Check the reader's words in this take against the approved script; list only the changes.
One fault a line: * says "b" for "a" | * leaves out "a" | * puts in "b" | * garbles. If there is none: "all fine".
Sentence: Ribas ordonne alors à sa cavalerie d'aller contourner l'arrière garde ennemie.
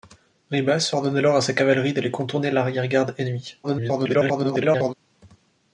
* garbles